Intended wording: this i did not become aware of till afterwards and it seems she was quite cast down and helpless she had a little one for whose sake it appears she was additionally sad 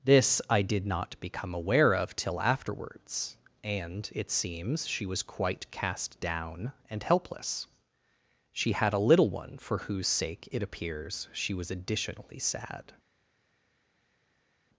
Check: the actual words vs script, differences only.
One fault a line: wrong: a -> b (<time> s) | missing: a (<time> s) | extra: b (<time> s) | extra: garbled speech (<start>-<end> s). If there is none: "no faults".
no faults